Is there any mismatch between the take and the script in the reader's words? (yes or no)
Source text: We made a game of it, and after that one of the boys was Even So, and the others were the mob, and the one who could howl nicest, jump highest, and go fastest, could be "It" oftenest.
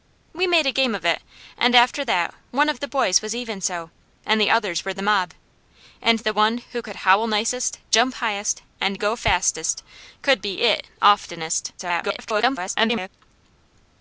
yes